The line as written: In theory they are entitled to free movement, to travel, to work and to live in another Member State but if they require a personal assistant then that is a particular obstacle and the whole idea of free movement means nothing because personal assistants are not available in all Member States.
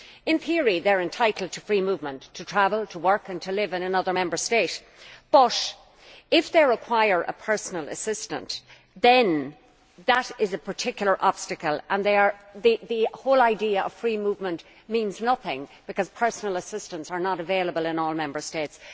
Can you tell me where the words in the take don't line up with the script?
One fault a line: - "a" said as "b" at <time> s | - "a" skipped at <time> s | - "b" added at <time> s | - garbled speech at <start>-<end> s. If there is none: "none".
none